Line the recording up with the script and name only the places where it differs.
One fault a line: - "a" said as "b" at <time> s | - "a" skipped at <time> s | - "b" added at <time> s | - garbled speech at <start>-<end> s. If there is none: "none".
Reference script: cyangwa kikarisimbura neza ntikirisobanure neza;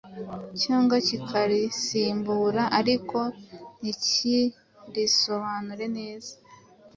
- "neza" said as "ariko" at 2.8 s